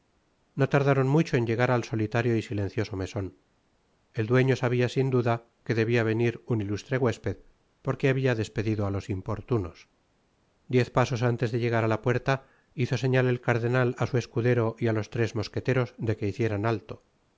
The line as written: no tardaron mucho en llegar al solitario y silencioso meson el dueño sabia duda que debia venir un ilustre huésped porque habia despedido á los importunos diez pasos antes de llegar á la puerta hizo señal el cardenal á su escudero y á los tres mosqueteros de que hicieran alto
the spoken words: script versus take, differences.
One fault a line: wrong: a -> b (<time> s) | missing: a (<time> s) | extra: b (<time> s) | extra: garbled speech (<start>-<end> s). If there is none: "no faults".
extra: sin (4.9 s)